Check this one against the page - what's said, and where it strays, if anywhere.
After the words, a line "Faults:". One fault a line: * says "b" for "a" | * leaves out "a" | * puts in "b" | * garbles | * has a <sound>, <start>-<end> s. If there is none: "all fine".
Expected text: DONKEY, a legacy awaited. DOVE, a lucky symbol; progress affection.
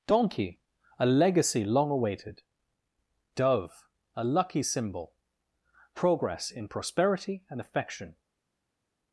DONKEY, a legacy long awaited. DOVE, a lucky symbol; progress in prosperity and affection.
Faults:
* puts in "long"
* puts in "in prosperity and"